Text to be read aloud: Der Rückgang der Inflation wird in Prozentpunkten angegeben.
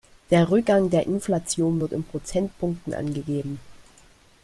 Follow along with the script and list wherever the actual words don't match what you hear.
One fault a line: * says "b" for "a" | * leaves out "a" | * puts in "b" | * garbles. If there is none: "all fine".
all fine